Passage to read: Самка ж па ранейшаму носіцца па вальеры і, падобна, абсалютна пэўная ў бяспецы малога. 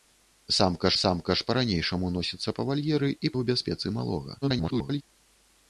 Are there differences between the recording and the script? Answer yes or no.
yes